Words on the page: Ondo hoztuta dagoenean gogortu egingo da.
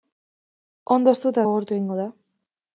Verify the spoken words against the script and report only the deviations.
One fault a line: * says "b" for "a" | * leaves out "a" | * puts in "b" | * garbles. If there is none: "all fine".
* leaves out "dagoenean"